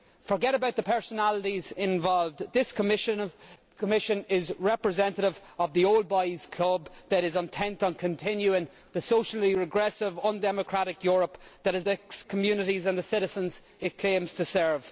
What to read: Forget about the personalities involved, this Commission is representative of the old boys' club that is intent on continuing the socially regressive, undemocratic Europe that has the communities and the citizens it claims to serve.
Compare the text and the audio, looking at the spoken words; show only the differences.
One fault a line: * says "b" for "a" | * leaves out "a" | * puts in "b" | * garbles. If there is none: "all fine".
all fine